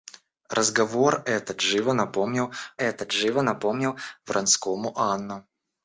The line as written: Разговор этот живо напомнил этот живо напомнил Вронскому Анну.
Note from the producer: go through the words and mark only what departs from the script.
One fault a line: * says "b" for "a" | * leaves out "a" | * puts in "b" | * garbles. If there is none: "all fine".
all fine